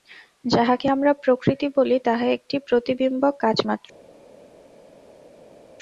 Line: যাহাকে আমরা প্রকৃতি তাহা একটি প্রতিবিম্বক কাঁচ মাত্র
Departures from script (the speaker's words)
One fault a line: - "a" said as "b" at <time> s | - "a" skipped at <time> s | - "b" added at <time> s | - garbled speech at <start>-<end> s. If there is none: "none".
- "বলি" added at 1.8 s